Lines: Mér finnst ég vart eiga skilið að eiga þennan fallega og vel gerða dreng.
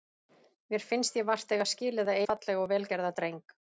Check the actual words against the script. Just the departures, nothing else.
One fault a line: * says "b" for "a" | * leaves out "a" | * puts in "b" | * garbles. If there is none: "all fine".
* leaves out "eiga þennan"